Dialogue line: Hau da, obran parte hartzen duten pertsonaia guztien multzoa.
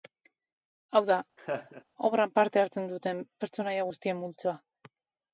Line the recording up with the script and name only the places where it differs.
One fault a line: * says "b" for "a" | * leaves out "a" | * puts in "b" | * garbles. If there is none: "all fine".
all fine